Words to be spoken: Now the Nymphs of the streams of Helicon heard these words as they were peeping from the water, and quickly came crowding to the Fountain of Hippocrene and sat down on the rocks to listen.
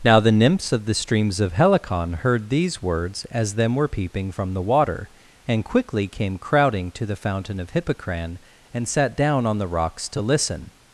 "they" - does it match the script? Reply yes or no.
no